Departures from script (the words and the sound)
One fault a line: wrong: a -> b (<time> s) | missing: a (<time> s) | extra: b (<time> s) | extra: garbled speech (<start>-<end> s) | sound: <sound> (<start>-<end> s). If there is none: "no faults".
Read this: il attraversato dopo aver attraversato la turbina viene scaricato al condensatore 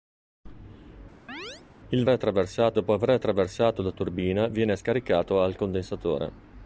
sound: chirp (1.3-1.6 s)